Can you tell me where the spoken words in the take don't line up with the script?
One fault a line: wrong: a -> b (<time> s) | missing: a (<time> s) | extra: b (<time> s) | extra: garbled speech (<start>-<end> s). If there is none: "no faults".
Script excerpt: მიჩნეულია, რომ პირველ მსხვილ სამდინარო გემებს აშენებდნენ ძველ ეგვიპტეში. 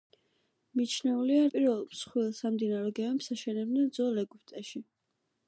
missing: რომ (1.4 s)